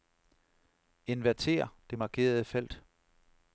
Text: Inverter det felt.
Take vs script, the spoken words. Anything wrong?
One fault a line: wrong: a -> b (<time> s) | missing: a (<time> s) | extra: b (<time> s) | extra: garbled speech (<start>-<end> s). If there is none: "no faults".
extra: markerede (2.0 s)